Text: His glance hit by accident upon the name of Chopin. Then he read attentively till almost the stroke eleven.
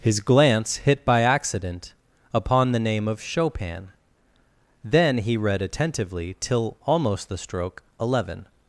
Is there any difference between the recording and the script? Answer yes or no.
no